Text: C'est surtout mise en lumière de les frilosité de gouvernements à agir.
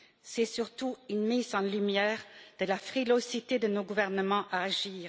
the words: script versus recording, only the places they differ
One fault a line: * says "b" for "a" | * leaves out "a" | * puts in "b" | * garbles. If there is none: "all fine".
* puts in "une"
* says "la" for "les"
* puts in "nos"